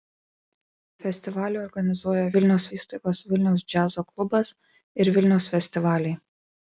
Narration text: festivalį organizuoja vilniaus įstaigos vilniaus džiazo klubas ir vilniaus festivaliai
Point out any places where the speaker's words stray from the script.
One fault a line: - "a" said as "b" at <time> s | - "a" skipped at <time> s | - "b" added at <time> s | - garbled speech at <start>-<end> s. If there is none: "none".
none